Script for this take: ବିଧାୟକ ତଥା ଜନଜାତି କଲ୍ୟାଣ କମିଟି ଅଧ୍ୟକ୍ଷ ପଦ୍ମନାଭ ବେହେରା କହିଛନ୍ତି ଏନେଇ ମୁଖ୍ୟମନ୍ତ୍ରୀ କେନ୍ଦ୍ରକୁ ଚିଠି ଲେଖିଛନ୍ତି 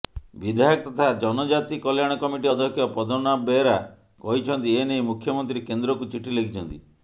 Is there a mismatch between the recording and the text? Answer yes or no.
no